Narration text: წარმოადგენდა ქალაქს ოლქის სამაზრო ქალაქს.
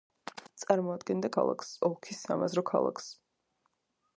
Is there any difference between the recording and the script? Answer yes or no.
no